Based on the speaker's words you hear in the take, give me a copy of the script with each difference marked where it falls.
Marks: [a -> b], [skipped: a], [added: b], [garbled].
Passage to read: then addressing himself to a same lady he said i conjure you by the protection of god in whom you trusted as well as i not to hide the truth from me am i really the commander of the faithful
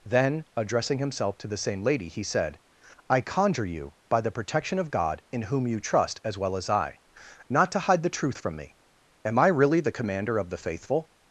then addressing himself to [a -> the] same lady he said i conjure you by the protection of god in whom you [trusted -> trust] as well as i not to hide the truth from me am i really the commander of the faithful